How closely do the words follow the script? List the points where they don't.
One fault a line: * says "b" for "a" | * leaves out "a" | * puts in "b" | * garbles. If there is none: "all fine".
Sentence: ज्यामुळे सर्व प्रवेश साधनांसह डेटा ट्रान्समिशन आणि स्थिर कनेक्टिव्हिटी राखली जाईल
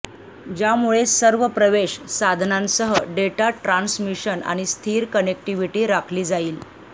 all fine